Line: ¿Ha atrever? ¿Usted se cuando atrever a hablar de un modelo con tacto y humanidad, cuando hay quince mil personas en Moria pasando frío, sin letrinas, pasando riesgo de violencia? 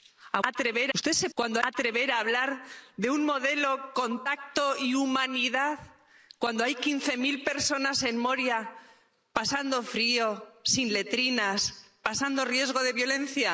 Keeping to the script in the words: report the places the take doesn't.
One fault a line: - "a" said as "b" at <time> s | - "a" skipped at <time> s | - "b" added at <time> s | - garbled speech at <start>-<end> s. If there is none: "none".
none